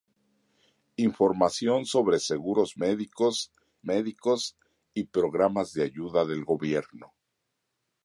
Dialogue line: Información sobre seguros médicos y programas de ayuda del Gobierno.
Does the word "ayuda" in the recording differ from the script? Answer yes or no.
no